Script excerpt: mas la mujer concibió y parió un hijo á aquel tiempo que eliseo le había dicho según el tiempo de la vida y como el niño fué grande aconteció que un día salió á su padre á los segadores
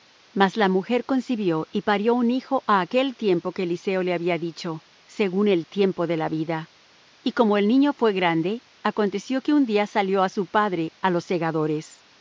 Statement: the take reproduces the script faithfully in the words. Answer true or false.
true